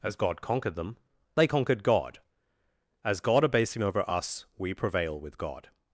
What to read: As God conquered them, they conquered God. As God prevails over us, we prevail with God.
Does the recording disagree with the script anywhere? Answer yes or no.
yes